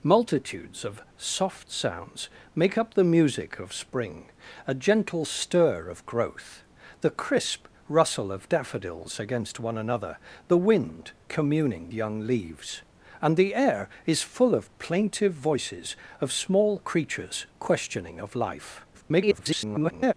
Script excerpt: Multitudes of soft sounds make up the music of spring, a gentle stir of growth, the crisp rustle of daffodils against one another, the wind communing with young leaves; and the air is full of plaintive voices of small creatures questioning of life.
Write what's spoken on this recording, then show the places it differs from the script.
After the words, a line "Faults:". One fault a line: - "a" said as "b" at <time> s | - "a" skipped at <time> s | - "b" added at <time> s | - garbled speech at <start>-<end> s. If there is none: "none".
Multitudes of soft sounds make up the music of spring, a gentle stir of growth, the crisp rustle of daffodils against one another, the wind communing young leaves; and the air is full of plaintive voices of small creatures questioning of life. [garbled]
Faults:
- "with" skipped at 11.9 s
- garbled speech at 18.9-20.1 s